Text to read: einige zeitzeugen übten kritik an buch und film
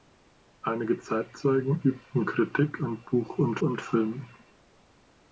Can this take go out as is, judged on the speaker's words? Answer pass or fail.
fail